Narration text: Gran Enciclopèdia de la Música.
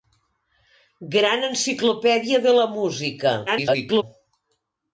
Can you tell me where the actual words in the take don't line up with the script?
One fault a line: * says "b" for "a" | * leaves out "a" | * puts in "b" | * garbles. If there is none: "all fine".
* garbles